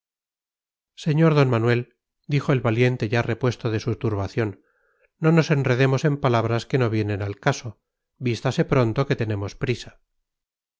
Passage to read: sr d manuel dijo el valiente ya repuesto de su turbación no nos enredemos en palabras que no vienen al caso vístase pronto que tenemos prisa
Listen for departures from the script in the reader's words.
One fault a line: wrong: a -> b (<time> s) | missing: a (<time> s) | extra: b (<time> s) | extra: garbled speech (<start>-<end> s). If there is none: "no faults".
no faults